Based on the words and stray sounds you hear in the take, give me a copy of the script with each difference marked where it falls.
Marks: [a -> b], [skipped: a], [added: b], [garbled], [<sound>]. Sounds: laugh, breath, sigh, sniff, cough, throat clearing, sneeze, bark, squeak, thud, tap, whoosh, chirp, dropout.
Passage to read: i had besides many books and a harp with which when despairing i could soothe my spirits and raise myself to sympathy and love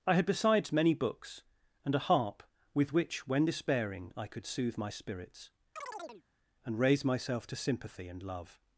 i had besides many books and a harp with which when despairing i could soothe my spirits [chirp] and raise myself to sympathy and love